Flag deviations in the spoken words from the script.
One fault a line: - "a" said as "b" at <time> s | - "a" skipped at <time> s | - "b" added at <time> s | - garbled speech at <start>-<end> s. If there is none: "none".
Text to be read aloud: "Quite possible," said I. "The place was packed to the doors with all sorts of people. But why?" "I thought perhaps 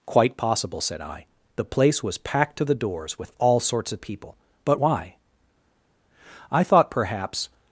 none